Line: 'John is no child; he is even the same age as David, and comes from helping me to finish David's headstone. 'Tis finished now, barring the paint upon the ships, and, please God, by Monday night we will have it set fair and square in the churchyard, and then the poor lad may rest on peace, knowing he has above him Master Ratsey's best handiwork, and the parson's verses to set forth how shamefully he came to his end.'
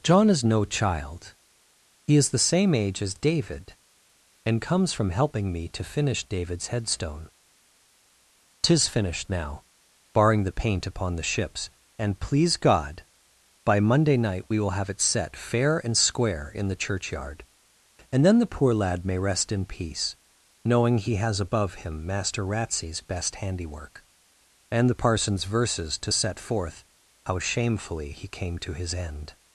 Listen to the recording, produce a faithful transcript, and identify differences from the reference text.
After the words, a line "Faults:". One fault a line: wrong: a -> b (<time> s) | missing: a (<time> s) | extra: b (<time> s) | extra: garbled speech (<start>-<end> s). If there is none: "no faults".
'John is no child; he is the same age as David, and comes from helping me to finish David's headstone. 'Tis finished now, barring the paint upon the ships, and, please God, by Monday night we will have it set fair and square in the churchyard, and then the poor lad may rest in peace, knowing he has above him Master Ratsey's best handiwork, and the parson's verses to set forth how shamefully he came to his end.'
Faults:
missing: even (2.3 s)
wrong: on -> in (19.5 s)